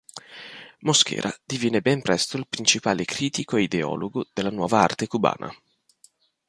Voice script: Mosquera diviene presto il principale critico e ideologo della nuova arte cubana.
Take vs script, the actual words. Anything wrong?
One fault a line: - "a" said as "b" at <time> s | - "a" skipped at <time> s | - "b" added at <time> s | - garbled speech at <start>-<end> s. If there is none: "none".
- "ben" added at 1.8 s